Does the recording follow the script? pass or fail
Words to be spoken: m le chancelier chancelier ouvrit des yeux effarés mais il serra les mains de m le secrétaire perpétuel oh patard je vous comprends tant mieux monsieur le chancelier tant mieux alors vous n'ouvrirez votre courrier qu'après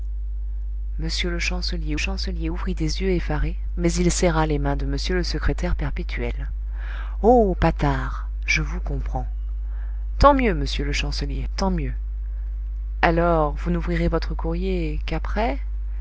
pass